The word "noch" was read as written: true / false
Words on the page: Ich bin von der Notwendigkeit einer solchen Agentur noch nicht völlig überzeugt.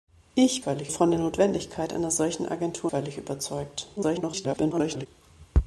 false